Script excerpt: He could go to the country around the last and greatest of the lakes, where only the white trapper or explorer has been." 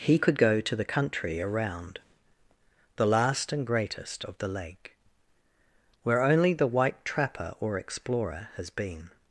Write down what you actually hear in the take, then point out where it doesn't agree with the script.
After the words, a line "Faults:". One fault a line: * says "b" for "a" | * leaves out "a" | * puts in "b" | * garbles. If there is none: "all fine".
He could go to the country around the last and greatest of the lake, where only the white trapper or explorer has been."
Faults:
* says "lake" for "lakes"